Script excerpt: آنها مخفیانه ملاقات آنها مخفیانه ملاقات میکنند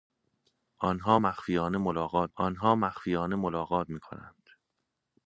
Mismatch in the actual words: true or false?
false